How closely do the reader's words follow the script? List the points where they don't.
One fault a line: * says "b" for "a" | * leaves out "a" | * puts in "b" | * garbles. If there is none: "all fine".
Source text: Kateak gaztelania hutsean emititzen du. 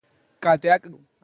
* leaves out "gaztelania hutsean emititzen"